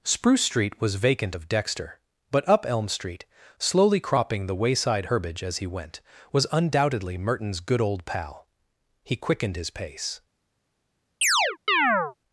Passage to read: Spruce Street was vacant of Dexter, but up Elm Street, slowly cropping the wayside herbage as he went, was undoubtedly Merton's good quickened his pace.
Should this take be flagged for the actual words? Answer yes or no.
yes